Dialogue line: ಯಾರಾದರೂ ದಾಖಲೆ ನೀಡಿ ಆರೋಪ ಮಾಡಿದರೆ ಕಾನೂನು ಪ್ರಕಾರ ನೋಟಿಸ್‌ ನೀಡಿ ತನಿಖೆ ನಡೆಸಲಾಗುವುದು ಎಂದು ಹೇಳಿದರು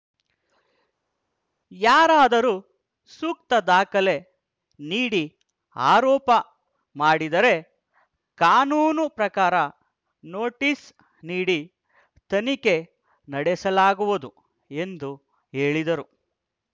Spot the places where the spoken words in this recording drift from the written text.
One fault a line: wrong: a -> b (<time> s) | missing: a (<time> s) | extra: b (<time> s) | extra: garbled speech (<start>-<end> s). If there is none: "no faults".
extra: ಸೂಕ್ತ (3.1 s)